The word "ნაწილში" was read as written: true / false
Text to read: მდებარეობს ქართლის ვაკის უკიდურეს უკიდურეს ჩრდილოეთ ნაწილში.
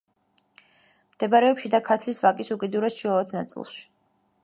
true